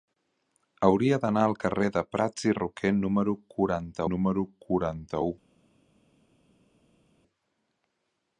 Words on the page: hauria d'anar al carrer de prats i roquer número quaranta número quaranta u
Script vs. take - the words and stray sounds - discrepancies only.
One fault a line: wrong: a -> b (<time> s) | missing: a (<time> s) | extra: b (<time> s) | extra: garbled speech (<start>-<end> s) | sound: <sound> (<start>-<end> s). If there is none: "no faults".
no faults